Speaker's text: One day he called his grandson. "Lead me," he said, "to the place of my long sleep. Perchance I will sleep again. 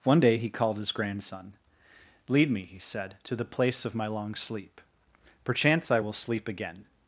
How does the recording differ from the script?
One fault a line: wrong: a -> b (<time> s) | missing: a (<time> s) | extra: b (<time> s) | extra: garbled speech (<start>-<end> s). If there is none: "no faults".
no faults